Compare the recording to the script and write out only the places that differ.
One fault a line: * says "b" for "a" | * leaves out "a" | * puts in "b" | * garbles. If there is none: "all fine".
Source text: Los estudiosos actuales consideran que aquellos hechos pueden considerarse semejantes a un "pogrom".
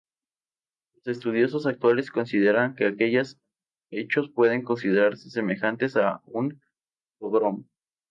all fine